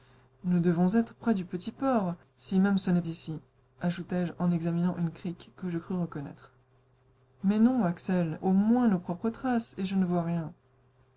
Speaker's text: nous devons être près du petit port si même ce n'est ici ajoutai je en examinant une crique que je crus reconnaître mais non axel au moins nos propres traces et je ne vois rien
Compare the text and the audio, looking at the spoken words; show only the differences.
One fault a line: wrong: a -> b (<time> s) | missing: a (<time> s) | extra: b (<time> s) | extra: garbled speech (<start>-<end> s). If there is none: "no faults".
no faults